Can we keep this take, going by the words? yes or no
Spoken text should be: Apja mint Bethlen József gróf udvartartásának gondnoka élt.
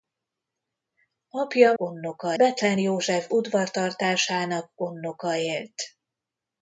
no